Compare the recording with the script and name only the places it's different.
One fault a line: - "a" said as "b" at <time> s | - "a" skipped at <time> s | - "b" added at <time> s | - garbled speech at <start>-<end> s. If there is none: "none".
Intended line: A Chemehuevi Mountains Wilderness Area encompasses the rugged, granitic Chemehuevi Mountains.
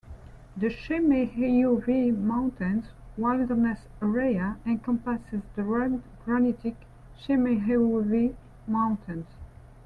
- "A" said as "The" at 0.6 s